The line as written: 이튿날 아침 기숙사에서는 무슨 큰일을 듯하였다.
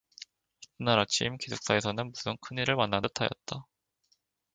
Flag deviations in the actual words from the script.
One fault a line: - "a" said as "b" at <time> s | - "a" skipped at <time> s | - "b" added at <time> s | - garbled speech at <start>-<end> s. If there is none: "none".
- "만난" added at 2.8 s